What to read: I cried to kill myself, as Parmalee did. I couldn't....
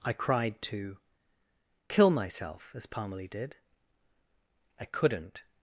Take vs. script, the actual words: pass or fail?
pass